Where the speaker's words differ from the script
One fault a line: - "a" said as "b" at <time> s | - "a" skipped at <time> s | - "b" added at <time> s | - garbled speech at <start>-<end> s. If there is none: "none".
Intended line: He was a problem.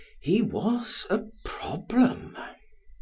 none